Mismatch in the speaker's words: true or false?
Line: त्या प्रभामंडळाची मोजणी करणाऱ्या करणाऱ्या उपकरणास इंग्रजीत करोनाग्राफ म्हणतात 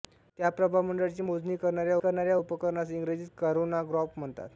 false